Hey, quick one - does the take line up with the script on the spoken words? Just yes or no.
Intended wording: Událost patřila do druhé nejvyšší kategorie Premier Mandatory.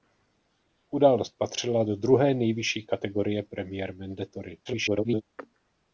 no